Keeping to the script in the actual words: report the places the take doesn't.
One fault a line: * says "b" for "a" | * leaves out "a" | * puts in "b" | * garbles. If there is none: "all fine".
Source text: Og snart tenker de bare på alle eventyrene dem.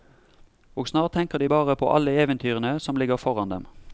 * puts in "som ligger foran"